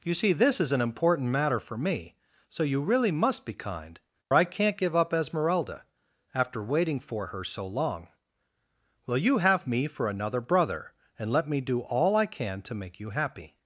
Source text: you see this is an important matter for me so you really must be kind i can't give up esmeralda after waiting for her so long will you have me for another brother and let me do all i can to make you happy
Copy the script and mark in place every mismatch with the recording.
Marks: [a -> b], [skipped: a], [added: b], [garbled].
you see this is an important matter for me so you really must be kind i can't give up esmeralda after waiting for her so long will you have me for another brother and let me do all i can to make you happy